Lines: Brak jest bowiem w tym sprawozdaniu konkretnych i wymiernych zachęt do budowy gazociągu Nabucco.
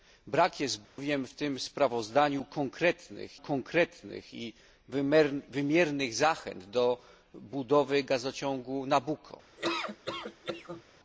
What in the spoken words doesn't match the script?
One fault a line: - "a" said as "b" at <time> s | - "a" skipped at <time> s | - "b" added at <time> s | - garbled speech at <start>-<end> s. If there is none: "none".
- "konkretnych" added at 3.4 s